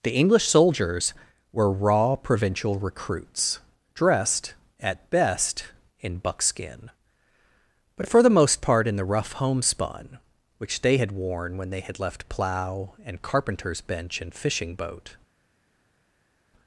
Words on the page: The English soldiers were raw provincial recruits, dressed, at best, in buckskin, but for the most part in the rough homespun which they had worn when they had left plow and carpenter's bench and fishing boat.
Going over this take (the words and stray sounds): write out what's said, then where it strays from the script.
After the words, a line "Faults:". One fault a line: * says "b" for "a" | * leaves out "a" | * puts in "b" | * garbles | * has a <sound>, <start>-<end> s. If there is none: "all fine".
The English soldiers were raw provincial recruits, dressed, at best, in buckskin, but for the most part in the rough homespun which they had worn when they had left plow and carpenter's bench and fishing boat.
Faults:
all fine